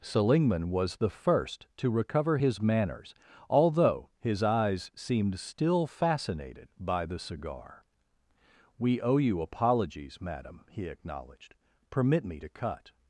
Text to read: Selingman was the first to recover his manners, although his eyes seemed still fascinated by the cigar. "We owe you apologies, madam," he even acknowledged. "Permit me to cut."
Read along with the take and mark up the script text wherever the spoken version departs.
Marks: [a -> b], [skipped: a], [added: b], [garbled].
Selingman was the first to recover his manners, although his eyes seemed still fascinated by the cigar. "We owe you apologies, madam," he [skipped: even] acknowledged. "Permit me to cut."